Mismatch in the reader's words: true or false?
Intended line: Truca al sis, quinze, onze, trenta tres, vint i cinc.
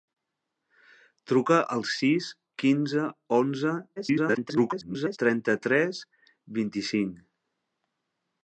true